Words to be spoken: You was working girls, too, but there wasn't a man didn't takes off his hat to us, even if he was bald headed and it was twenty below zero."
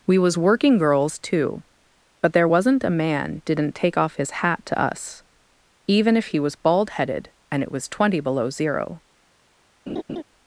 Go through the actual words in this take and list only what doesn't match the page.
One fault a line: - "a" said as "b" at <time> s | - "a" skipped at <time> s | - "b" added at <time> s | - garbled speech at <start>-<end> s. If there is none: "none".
- "You" said as "We" at 0.1 s
- "takes" said as "take" at 3.8 s